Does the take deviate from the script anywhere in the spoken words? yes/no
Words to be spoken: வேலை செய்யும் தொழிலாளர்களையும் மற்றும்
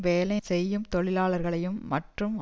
no